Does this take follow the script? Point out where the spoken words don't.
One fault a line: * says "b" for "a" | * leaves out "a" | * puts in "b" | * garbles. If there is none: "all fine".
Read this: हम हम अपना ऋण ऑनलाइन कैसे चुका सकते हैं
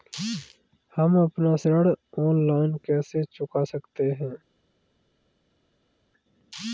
* leaves out "हम"